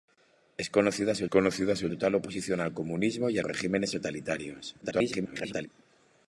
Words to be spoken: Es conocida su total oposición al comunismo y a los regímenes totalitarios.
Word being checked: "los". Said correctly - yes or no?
no